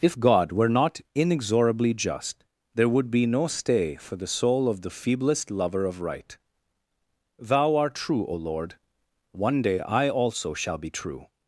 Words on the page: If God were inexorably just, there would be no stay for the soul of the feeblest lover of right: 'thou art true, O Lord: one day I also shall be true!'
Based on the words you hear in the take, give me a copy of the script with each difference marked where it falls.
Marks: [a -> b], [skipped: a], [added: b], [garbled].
If God were [added: not] inexorably just, there would be no stay for the soul of the feeblest lover of right: 'thou art true, O Lord: one day I also shall be true!'